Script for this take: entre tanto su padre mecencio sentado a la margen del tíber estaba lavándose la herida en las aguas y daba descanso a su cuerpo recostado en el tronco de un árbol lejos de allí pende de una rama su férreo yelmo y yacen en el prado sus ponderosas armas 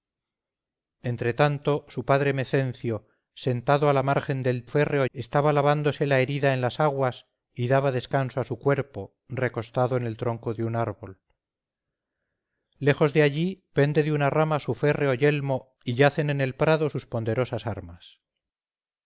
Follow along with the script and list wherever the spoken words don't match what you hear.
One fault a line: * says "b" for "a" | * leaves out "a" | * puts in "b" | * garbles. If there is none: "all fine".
* says "férreo" for "tíber"